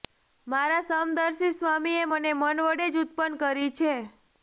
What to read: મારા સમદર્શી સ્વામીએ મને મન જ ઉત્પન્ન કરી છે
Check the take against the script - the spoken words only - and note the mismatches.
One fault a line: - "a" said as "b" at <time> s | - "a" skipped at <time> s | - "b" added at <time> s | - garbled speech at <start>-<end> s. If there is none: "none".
- "વડે" added at 2.7 s